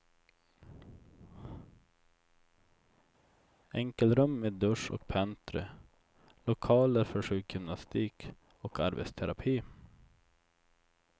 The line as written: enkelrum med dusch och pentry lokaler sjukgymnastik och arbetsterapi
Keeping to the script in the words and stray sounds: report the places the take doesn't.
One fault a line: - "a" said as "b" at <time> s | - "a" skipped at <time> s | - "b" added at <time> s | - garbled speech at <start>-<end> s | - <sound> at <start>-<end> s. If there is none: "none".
- "för" added at 7.0 s